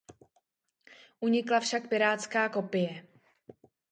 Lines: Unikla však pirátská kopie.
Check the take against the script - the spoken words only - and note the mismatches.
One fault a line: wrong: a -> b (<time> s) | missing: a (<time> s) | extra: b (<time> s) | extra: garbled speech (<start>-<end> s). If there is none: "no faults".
no faults